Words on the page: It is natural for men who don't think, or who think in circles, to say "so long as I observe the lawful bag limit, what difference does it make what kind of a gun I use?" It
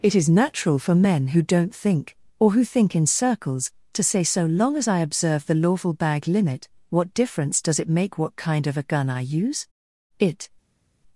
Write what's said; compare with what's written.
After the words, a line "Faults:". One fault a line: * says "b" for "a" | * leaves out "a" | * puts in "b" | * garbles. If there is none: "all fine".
It is natural for men who don't think, or who think in circles, to say "so long as I observe the lawful bag limit, what difference does it make what kind of a gun I use?" It
Faults:
all fine